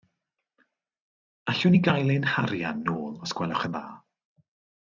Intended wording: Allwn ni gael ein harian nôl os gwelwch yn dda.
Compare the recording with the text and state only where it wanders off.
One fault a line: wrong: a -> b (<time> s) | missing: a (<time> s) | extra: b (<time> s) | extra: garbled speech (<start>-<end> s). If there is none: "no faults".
no faults